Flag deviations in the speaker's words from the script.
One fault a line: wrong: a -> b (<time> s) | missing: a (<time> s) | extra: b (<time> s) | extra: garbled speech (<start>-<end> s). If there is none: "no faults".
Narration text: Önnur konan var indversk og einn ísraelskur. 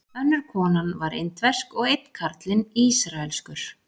extra: karlinn (2.2 s)